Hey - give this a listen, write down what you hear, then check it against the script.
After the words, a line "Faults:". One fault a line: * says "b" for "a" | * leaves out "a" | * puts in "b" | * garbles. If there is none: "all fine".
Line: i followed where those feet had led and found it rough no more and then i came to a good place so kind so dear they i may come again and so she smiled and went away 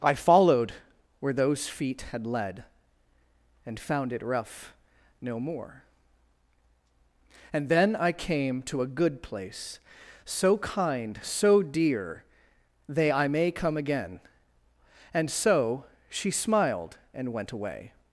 i followed where those feet had led and found it rough no more and then i came to a good place so kind so dear they i may come again and so she smiled and went away
Faults:
all fine